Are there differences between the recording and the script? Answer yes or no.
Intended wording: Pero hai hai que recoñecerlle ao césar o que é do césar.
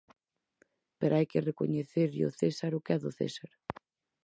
yes